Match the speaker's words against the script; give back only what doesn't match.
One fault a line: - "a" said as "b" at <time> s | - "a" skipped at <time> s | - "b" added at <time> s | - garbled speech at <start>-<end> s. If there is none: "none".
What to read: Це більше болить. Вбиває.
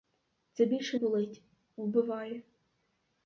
none